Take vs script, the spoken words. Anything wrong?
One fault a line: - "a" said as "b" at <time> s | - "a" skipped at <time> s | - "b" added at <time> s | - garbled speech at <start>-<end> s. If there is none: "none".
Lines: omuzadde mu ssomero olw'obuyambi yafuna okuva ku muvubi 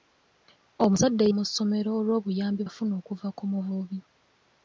none